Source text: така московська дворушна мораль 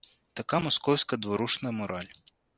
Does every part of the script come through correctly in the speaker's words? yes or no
yes